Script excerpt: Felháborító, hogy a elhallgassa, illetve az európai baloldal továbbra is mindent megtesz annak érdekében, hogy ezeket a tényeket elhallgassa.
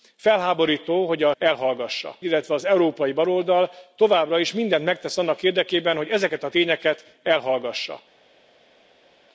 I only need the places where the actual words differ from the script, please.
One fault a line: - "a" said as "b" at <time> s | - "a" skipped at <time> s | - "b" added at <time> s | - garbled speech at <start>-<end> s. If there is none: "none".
none